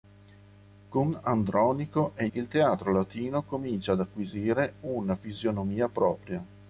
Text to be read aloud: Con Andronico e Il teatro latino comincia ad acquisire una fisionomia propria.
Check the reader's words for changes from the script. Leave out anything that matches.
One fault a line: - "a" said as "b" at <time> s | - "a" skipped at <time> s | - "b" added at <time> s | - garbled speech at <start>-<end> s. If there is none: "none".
none